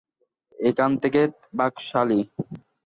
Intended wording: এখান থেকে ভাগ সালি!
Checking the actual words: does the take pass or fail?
pass